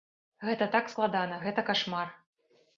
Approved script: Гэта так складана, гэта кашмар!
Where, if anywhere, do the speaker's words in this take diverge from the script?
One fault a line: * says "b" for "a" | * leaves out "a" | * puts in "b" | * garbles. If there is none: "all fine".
all fine